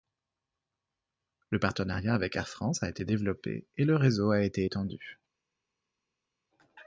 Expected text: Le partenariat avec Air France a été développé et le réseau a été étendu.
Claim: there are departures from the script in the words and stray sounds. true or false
false